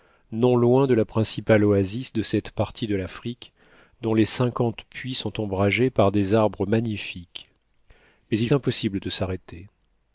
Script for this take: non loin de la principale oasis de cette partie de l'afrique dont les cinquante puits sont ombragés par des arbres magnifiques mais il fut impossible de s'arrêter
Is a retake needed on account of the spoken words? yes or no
yes